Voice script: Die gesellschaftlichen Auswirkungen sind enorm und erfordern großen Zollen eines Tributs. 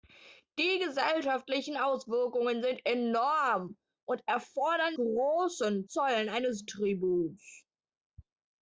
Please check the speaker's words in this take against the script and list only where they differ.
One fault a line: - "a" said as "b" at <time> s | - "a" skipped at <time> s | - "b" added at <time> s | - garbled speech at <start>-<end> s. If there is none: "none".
none